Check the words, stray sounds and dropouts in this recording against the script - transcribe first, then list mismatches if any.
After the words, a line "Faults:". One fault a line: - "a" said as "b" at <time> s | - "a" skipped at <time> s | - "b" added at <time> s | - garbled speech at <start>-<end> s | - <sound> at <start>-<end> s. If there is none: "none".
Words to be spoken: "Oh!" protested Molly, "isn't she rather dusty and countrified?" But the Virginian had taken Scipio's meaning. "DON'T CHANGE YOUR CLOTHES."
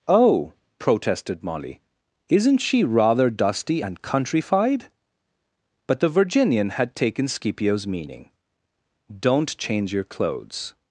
"Oh!" protested Molly, "isn't she rather dusty and countrified?" But the Virginian had taken Scipio's meaning. "DON'T CHANGE YOUR CLOTHES."
Faults:
none